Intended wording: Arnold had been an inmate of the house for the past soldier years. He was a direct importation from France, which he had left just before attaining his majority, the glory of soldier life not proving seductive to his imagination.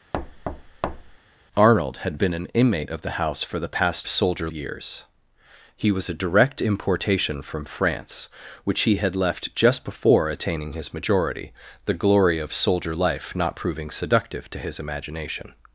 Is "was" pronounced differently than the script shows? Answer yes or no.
no